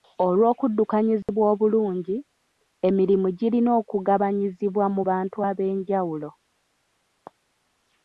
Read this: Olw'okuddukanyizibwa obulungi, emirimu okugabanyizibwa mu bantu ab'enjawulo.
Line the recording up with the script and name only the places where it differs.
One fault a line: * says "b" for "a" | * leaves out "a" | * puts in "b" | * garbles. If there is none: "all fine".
* puts in "girina"